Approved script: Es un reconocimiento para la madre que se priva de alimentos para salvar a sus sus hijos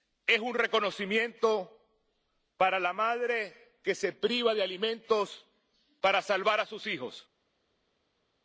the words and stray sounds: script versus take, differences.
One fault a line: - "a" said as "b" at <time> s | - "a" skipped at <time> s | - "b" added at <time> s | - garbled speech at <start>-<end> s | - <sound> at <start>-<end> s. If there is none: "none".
- "sus" skipped at 6.9 s